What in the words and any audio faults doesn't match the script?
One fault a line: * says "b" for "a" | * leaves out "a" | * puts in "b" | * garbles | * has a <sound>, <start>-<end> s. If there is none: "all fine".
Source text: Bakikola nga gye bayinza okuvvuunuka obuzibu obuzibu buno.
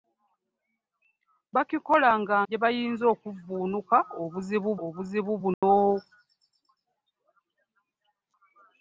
* has a dropout, 5.5-5.6 s